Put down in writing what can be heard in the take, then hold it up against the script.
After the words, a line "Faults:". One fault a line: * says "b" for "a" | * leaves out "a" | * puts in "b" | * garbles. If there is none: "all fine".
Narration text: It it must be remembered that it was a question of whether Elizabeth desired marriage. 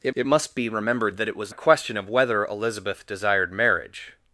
It it must be remembered that it was a question of whether Elizabeth desired marriage.
Faults:
all fine